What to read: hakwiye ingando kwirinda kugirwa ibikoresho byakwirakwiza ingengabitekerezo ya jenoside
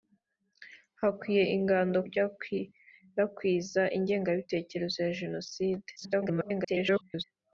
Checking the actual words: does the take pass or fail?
fail